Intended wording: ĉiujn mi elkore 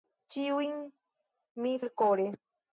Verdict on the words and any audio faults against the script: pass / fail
pass